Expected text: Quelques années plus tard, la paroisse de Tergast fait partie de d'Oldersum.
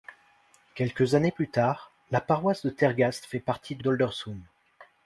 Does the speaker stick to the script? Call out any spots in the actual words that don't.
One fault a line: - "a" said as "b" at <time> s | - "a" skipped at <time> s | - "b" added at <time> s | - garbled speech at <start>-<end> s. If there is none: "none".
none